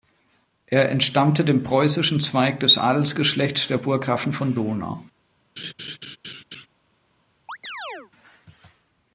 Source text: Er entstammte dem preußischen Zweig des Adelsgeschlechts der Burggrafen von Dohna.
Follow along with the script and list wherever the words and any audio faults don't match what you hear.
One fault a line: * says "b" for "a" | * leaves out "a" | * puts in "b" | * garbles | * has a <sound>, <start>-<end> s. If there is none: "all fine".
* has a laugh, 5.6-6.7 s
* has a chirp, 7.5-8.1 s